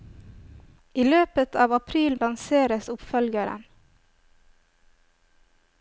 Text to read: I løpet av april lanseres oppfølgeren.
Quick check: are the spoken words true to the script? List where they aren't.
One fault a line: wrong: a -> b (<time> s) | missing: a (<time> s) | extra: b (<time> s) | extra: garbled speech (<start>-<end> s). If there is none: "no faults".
no faults